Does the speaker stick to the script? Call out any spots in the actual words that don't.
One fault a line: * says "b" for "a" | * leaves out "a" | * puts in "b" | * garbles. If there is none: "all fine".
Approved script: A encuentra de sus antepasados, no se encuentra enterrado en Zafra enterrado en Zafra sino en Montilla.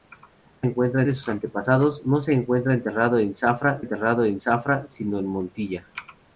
all fine